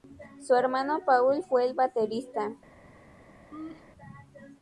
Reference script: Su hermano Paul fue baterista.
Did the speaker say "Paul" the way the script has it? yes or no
yes